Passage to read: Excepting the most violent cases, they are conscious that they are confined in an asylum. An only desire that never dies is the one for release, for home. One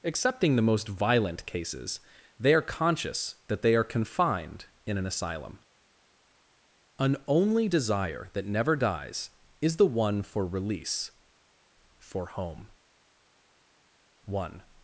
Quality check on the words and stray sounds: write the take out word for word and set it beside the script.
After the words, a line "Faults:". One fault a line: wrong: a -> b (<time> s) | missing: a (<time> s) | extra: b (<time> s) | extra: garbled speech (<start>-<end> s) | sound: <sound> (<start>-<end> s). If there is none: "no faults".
Excepting the most violent cases, they are conscious that they are confined in an asylum. An only desire that never dies is the one for release, for home. One
Faults:
no faults